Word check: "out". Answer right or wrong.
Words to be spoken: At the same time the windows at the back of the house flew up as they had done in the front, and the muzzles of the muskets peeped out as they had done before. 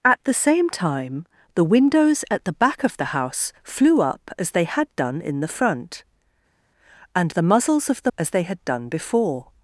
wrong